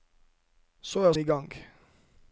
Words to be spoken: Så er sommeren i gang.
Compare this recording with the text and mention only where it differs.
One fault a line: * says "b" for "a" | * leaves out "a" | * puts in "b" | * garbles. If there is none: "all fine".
* leaves out "sommeren"